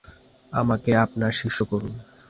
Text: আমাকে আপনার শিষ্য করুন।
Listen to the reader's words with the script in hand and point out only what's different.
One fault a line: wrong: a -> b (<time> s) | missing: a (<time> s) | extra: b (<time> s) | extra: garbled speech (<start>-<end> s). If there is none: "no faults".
no faults